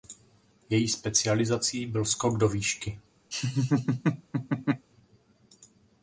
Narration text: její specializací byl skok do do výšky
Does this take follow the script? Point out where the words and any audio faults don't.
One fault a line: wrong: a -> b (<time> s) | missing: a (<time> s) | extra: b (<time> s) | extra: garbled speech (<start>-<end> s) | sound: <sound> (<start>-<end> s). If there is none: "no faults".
missing: do (2.5 s)
sound: laugh (3.3-4.9 s)